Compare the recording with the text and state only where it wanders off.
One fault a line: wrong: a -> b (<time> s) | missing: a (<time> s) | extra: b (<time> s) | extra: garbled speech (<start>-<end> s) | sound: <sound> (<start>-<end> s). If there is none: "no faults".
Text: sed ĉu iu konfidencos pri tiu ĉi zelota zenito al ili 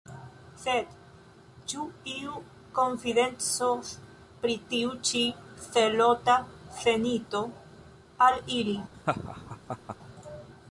sound: laugh (8.9-10.0 s)